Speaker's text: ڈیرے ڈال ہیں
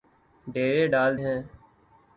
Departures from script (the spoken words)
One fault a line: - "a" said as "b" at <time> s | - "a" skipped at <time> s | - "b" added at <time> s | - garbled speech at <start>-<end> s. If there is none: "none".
none